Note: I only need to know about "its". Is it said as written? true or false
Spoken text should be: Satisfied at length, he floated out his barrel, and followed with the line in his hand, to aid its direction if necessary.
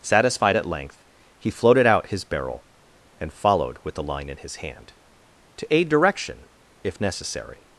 false